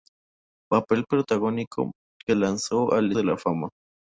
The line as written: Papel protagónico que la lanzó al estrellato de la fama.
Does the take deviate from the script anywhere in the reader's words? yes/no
yes